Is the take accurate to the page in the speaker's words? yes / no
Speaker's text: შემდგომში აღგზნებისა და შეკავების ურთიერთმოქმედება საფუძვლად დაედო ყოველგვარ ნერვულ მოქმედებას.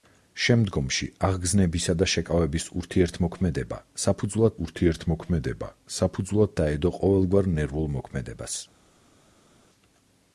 no